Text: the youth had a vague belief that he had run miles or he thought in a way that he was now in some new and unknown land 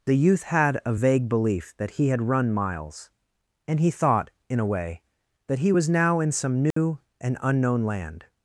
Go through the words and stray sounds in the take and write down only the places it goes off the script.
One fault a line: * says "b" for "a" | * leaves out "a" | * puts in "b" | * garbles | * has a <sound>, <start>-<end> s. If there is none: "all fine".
* says "and" for "or"
* has a dropout, 6.7-6.8 s